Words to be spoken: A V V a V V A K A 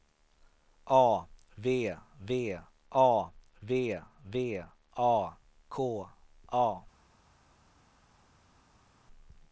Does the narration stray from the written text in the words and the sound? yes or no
no